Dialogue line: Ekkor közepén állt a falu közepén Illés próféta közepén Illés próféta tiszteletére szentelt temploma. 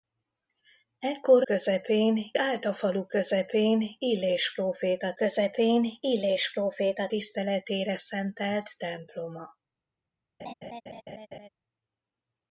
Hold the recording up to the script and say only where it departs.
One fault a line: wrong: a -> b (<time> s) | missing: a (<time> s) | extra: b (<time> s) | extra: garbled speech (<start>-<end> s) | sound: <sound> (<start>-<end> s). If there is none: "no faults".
sound: laugh (10.4-11.5 s)